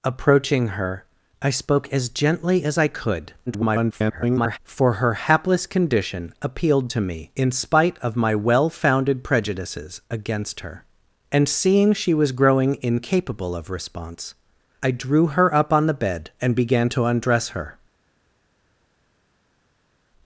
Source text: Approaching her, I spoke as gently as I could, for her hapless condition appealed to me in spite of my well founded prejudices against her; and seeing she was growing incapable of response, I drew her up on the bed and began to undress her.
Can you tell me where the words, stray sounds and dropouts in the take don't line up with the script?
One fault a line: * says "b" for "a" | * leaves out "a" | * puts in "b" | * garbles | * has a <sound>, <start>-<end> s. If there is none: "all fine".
* garbles